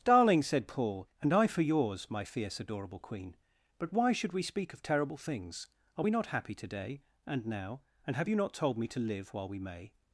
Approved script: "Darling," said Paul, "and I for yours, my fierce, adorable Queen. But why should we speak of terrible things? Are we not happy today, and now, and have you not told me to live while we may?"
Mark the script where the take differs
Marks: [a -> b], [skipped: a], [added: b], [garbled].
"Darling," said Paul, "and I for yours, my fierce, adorable Queen. But why should we speak of terrible things? Are we not happy today, and now, and have you not told me to live while we may?"